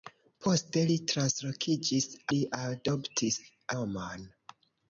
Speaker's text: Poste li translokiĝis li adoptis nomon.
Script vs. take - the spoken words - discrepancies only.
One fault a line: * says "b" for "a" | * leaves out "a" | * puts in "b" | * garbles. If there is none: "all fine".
all fine